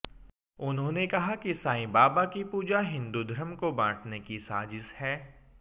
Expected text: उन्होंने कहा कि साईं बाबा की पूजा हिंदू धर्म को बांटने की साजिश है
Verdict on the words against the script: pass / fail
pass